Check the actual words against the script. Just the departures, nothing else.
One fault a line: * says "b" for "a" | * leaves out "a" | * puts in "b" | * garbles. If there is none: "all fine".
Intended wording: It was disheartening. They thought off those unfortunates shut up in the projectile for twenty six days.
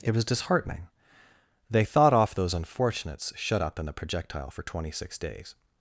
all fine